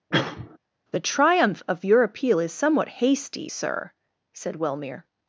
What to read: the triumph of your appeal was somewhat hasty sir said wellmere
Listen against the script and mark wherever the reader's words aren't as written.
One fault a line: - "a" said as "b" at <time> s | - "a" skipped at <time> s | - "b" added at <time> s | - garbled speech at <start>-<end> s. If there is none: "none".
- "was" said as "is" at 2.4 s